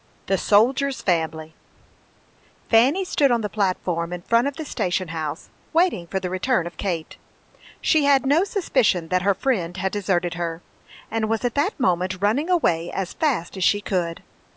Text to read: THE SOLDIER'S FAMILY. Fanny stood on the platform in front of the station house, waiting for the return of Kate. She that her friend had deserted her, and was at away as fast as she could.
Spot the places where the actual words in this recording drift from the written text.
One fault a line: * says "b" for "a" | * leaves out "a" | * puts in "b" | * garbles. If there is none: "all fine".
* puts in "had no suspicion"
* puts in "that moment running"